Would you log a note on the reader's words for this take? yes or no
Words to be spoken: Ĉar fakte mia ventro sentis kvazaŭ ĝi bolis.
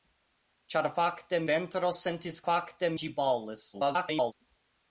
yes